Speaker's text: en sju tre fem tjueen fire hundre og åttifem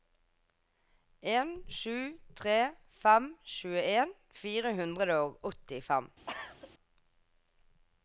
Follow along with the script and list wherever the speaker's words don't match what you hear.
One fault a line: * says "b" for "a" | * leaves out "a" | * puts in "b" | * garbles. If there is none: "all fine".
all fine